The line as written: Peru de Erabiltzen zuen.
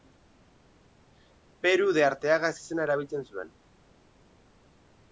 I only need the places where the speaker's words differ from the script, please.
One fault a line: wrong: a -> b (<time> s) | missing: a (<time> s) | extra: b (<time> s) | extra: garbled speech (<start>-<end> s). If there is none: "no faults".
extra: Arteaga ezizena (2.1 s)